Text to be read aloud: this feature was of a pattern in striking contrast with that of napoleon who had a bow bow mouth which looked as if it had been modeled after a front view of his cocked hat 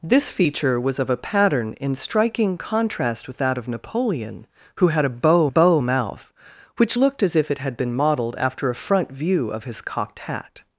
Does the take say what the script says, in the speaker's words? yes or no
yes